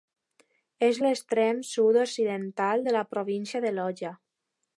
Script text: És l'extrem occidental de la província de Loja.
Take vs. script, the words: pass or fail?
fail